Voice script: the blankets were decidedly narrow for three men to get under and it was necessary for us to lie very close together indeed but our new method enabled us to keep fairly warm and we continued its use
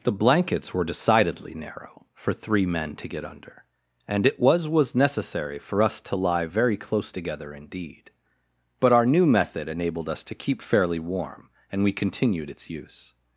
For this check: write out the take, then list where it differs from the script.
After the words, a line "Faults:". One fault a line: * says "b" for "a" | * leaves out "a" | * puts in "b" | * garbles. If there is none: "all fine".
the blankets were decidedly narrow for three men to get under and it was was necessary for us to lie very close together indeed but our new method enabled us to keep fairly warm and we continued its use
Faults:
* puts in "was"